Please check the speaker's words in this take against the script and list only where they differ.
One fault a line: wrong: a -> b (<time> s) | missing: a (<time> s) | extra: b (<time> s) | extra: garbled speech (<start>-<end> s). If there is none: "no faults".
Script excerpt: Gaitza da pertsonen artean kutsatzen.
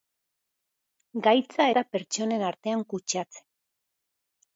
no faults